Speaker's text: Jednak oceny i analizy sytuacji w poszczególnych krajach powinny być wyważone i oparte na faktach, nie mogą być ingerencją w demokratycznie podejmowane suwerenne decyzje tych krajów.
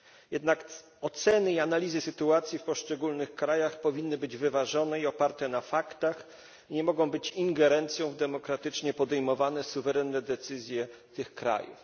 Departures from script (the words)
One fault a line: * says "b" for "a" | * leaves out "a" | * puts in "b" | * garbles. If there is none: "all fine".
all fine